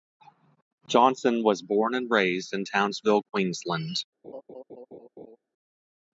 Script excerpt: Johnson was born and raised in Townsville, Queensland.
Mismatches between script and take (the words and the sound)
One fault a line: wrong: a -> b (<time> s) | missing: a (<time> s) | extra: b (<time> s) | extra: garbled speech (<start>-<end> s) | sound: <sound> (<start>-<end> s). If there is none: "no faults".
sound: laugh (4.2-5.4 s)